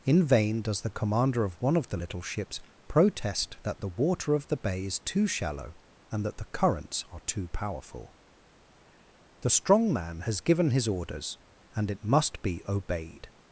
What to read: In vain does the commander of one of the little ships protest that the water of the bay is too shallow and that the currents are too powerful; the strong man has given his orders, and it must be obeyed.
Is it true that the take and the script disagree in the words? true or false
false